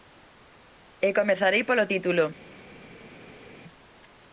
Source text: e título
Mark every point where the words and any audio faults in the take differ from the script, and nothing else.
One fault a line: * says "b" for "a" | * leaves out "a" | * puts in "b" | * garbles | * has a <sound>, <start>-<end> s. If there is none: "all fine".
* puts in "comezarei polo"